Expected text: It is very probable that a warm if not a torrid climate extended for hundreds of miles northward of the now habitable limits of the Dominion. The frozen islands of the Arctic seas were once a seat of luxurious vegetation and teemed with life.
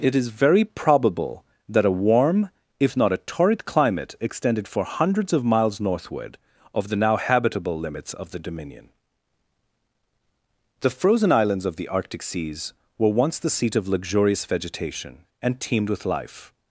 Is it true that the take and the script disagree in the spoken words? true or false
true